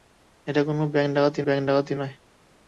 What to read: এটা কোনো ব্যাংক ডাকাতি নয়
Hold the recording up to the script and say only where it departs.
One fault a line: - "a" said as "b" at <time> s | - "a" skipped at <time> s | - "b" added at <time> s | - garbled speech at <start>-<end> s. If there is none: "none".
- "ব্যাংক ডাকাতি" added at 1.5 s